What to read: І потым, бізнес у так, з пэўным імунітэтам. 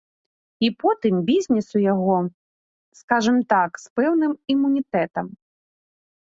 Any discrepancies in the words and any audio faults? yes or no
yes